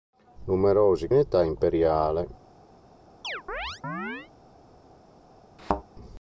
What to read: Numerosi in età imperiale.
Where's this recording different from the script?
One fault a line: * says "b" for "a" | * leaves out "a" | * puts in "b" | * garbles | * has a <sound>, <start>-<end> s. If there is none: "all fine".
* has a chirp, 3.2-4.3 s
* has a thud, 5.6-5.8 s